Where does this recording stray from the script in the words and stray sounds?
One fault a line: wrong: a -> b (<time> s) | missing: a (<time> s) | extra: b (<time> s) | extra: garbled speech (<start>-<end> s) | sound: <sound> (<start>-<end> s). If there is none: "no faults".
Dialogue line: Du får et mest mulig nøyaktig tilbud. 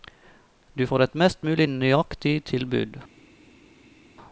no faults